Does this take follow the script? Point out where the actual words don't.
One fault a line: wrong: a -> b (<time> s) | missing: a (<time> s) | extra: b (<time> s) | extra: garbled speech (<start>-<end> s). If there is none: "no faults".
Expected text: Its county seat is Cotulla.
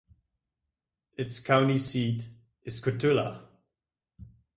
no faults